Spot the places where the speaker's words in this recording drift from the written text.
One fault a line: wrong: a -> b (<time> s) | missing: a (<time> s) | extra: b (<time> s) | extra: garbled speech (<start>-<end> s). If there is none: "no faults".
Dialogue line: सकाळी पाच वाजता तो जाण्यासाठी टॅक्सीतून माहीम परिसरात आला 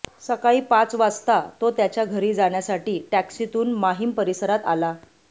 extra: त्याच्या घरी (1.7 s)